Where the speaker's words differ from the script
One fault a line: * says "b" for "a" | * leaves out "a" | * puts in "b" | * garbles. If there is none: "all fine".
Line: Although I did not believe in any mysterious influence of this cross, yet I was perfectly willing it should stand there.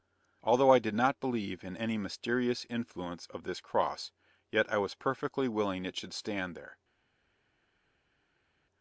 all fine